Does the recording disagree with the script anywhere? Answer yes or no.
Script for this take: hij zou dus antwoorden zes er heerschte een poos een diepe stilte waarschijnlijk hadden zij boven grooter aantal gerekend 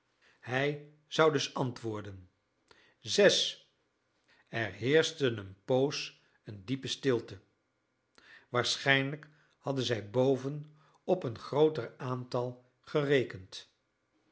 yes